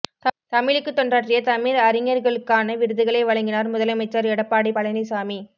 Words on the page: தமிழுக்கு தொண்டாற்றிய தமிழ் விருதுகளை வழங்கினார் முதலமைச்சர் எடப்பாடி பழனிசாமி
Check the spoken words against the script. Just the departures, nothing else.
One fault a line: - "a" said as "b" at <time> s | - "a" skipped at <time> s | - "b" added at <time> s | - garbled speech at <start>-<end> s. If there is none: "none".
- "அறிஞர்களுக்கான" added at 1.8 s